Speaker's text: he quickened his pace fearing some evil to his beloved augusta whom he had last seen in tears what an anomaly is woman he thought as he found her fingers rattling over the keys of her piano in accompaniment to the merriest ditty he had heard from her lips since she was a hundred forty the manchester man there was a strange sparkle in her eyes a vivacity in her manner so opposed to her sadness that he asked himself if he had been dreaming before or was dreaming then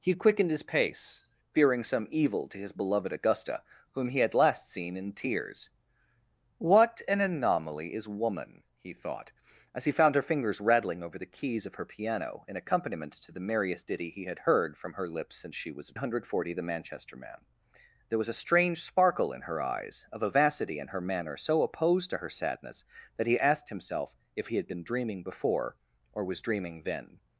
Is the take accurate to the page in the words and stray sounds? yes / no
yes